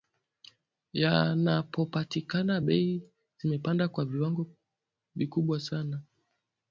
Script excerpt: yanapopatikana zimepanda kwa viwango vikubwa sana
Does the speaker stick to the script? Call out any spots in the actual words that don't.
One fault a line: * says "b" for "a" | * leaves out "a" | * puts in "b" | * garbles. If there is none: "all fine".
* puts in "bei"